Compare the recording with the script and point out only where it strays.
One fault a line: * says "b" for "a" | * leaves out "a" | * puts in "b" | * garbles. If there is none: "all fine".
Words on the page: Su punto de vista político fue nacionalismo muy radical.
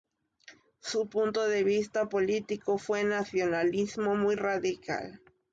all fine